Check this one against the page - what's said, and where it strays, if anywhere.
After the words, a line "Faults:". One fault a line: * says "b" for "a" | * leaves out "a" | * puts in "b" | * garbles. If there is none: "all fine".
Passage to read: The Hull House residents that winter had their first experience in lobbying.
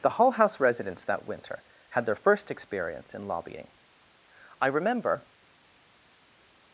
The Hull House residents that winter had their first experience in lobbying. I remember
Faults:
* puts in "I remember"